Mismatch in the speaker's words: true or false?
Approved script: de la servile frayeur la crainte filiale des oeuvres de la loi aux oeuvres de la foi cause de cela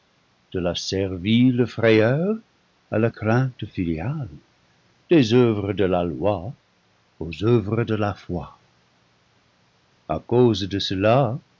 true